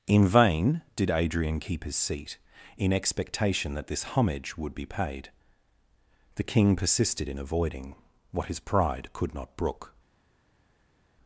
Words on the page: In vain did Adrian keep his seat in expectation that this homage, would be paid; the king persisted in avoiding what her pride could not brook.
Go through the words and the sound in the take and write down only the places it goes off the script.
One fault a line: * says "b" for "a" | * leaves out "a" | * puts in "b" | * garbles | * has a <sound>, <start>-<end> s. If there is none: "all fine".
* says "his" for "her"